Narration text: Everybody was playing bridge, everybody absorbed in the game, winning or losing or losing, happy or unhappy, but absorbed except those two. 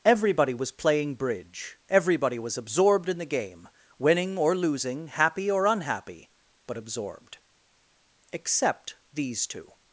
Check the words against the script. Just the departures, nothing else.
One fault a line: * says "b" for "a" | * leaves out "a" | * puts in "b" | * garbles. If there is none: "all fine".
* puts in "was"
* leaves out "or losing"
* says "these" for "those"